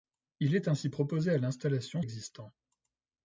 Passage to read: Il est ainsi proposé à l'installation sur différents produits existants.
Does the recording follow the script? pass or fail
fail